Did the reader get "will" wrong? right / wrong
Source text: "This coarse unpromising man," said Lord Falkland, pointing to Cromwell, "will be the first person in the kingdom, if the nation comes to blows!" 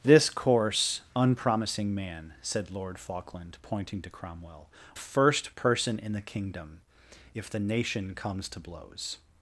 wrong